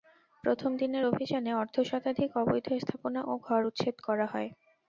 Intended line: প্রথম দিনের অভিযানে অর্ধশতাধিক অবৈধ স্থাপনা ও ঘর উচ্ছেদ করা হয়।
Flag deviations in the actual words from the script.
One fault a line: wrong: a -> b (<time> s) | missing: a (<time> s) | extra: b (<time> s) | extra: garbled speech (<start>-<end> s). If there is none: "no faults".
no faults